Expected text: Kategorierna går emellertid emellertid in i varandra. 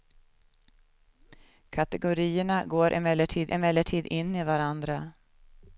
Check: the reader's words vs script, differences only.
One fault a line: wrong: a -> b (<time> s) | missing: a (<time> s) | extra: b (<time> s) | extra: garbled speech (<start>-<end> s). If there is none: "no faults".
no faults